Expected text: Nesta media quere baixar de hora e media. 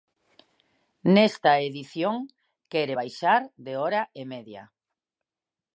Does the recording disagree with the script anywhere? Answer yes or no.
yes